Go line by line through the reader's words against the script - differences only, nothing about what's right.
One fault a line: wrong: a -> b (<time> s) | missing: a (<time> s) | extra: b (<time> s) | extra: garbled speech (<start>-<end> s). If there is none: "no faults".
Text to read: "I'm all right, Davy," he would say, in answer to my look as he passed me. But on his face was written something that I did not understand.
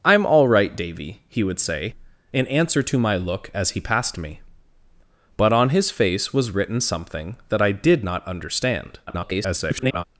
extra: garbled speech (9.1-10.0 s)